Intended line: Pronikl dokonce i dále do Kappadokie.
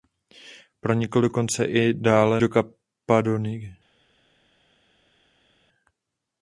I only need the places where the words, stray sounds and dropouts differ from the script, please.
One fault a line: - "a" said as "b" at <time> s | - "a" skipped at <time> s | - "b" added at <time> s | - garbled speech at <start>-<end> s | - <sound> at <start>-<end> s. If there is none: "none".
none